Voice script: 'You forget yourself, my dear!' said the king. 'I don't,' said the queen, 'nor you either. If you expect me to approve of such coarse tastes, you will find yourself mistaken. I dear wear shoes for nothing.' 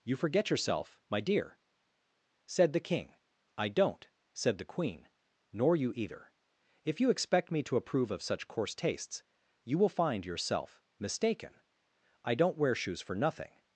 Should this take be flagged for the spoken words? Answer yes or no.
yes